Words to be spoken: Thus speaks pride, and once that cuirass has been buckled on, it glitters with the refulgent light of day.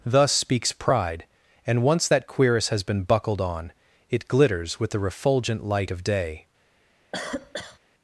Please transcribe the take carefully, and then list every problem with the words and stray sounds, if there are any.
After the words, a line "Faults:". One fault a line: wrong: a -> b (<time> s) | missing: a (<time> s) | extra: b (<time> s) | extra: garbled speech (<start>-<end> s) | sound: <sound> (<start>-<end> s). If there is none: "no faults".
Thus speaks pride, and once that cuirass has been buckled on, it glitters with the refulgent light of day.
Faults:
sound: cough (7.1-7.8 s)